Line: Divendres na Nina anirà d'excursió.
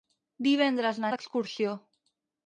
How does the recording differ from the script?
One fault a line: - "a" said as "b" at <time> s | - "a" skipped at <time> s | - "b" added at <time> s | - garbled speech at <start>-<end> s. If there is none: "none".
- "Nina anirà" skipped at 1.1 s